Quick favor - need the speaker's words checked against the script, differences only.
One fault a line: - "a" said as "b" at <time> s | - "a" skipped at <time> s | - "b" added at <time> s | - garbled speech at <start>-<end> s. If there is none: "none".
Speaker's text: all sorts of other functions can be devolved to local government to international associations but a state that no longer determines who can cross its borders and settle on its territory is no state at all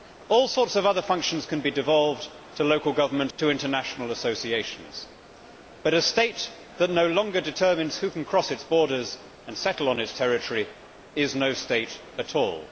none